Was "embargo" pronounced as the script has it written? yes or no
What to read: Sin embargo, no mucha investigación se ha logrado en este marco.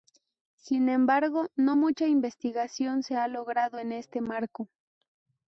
yes